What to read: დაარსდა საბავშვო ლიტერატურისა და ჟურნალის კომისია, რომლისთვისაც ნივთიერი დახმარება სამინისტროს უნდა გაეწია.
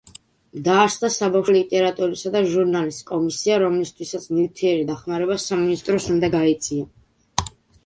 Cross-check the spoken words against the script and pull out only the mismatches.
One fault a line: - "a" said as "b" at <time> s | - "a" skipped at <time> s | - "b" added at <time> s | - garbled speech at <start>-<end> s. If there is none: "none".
none